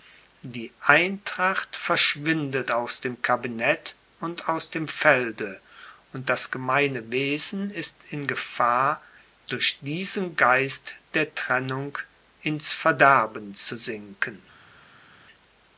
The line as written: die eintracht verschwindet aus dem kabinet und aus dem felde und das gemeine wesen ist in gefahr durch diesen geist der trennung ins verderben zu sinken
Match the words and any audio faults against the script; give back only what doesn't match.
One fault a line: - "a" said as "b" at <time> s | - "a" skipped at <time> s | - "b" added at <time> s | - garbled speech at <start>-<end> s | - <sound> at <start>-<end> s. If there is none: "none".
none